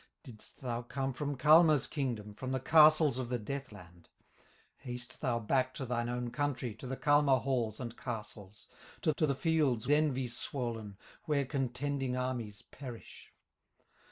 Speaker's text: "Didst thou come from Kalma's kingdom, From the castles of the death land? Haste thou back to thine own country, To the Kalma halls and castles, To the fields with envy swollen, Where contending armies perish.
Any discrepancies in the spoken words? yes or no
yes